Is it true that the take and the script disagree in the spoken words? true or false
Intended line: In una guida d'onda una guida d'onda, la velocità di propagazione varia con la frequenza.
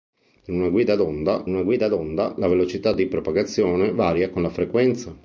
false